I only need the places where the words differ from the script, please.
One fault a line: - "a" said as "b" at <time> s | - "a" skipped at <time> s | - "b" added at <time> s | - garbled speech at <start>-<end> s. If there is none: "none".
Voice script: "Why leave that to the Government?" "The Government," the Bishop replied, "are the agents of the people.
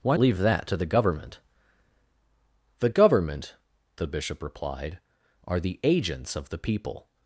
none